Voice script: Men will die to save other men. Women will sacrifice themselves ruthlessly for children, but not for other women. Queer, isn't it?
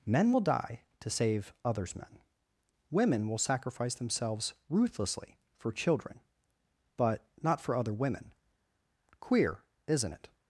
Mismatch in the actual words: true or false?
true